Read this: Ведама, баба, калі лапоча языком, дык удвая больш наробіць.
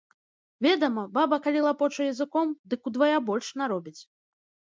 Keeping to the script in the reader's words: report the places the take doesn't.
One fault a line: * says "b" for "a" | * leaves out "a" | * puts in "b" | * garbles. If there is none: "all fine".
all fine